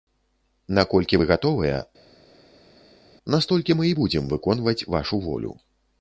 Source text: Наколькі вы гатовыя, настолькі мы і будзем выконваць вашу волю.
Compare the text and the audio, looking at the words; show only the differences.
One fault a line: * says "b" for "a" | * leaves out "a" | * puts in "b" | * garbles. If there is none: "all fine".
all fine